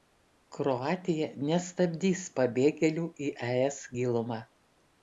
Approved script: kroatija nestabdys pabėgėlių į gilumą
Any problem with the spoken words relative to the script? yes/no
yes